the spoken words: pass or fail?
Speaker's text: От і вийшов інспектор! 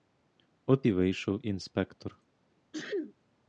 pass